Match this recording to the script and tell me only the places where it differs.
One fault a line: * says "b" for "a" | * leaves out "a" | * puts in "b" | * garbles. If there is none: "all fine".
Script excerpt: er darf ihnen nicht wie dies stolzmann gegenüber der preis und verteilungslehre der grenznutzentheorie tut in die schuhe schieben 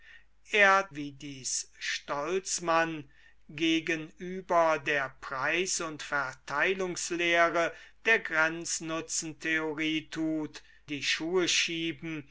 * leaves out "darf ihnen nicht"
* leaves out "in"